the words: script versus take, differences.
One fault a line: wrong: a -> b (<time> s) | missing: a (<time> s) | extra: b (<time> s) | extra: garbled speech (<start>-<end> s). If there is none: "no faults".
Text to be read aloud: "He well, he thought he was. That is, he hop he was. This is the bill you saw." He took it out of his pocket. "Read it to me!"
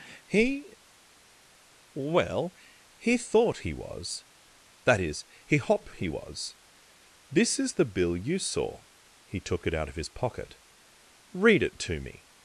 no faults